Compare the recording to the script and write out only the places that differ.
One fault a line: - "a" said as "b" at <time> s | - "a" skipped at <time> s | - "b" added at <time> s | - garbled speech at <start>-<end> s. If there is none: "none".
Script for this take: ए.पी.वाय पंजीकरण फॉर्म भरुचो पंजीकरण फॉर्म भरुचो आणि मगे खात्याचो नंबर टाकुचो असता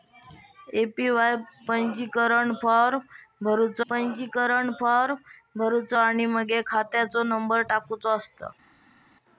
none